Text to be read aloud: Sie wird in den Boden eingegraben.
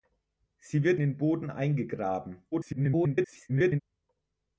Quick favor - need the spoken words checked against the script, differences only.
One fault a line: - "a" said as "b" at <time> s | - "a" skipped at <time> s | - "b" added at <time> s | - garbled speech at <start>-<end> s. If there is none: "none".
- "in" skipped at 1.0 s
- garbled speech at 2.5-3.8 s